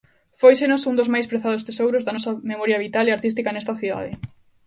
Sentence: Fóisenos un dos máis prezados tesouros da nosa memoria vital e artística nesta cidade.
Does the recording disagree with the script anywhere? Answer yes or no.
no